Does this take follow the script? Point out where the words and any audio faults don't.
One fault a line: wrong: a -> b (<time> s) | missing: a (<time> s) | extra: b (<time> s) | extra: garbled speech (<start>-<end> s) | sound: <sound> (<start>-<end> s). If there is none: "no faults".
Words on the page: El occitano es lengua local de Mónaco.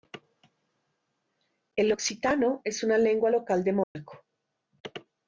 extra: una (2.8 s)
sound: dropout (3.8-4.0 s)